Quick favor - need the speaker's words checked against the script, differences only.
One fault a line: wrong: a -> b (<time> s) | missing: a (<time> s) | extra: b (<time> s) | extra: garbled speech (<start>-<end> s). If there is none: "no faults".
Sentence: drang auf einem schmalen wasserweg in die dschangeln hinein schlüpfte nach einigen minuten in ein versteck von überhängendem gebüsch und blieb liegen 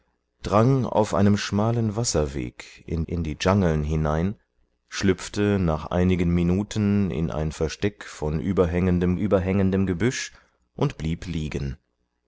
extra: in (3.1 s)
extra: überhängendem (9.1 s)